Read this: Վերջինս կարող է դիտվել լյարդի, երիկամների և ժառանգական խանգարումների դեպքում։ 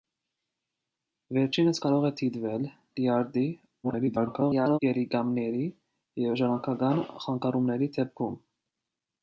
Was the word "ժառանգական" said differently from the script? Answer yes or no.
no